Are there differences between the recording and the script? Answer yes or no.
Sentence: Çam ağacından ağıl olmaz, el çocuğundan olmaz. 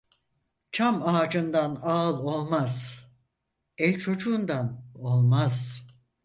no